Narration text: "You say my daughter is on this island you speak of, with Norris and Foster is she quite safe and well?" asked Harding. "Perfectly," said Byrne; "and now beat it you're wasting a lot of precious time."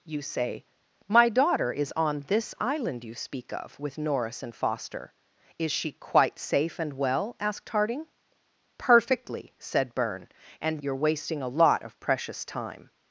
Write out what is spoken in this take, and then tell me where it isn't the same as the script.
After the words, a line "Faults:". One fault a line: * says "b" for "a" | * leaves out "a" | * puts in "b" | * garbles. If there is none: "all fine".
"You say my daughter is on this island you speak of, with Norris and Foster is she quite safe and well?" asked Harding. "Perfectly," said Byrne; "and you're wasting a lot of precious time."
Faults:
* leaves out "now beat it"